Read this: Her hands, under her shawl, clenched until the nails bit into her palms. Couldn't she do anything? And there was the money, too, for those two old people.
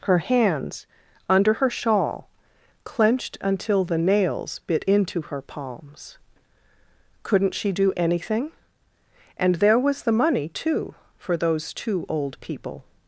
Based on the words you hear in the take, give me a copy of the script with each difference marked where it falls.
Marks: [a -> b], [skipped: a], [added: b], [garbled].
Her hands, under her shawl, clenched until the nails bit into her palms. Couldn't she do anything? And there was the money, too, for those two old people.